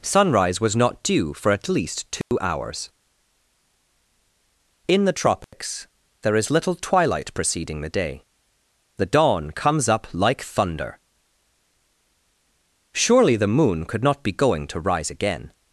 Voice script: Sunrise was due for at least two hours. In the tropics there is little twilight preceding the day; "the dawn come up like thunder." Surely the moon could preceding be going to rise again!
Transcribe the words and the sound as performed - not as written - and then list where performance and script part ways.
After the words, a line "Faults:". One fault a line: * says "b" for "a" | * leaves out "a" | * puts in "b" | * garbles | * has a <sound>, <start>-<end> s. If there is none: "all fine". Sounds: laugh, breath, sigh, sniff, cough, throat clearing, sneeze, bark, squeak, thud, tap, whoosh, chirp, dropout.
Sunrise was not due for at least two hours. In the tropics there is little twilight preceding the day; "the dawn comes up like thunder." Surely the moon could not be going to rise again!
Faults:
* puts in "not"
* has a dropout, 2.2-2.3 s
* has a dropout, 5.4-5.5 s
* says "comes" for "come"
* says "not" for "preceding"